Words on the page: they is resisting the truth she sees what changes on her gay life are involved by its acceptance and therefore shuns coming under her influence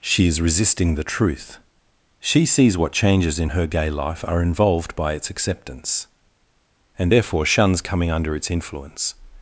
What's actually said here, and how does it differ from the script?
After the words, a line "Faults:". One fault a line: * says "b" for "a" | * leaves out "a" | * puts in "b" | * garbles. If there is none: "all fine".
she is resisting the truth she sees what changes in her gay life are involved by its acceptance and therefore shuns coming under its influence
Faults:
* says "she" for "they"
* says "in" for "on"
* says "its" for "her"